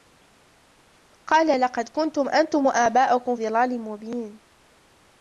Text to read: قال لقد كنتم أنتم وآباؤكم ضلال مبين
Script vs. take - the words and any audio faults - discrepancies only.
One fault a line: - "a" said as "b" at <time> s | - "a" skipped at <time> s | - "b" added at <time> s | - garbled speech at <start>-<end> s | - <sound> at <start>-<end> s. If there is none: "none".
none